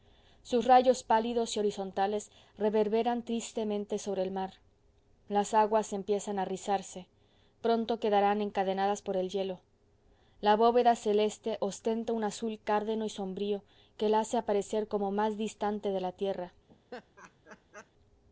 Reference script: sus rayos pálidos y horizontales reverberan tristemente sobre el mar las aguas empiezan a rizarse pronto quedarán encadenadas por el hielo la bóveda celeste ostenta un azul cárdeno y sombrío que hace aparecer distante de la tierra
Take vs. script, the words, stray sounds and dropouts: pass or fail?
fail